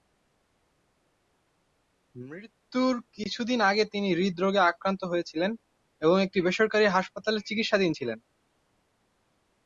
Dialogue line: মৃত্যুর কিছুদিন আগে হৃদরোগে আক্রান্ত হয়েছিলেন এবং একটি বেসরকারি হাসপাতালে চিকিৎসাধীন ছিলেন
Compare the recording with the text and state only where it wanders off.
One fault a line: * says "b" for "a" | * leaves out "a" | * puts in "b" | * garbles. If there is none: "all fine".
* puts in "তিনি"